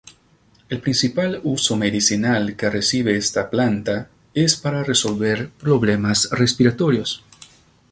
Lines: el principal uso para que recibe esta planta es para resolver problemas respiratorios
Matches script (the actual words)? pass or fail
fail